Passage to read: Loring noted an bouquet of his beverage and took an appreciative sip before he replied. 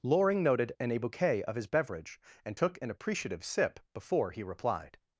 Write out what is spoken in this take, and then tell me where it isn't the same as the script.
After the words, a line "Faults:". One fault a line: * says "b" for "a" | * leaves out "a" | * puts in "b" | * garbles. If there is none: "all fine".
Loring noted an bouquet of his beverage and took an appreciative sip before he replied.
Faults:
all fine